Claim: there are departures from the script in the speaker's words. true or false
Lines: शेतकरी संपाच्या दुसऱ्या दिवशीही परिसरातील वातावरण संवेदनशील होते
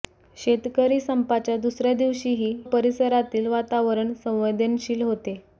false